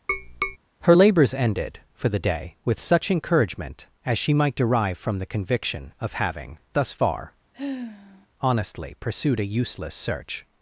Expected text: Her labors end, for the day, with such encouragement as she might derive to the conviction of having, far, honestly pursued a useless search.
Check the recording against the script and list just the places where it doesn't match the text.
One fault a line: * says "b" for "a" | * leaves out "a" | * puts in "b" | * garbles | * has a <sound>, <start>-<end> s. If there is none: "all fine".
* has a tap, 0.1-0.6 s
* says "ended" for "end"
* says "from" for "to"
* puts in "thus"
* has a sigh, 7.5-8.3 s